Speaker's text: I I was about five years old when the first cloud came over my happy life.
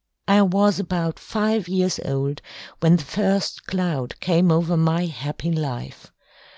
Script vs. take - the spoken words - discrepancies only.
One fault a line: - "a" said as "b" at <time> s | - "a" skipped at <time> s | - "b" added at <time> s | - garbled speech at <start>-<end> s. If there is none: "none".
- "I" skipped at 0.4 s